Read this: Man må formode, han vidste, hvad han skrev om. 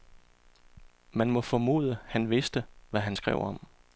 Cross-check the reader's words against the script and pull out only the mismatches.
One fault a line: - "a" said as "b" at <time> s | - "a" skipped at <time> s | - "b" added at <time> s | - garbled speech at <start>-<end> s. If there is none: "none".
none